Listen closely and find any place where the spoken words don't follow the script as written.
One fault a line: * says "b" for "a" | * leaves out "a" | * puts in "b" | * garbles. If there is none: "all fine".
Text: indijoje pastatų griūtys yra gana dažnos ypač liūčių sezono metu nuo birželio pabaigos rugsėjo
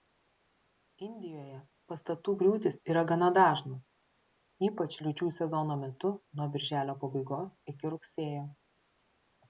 * puts in "iki"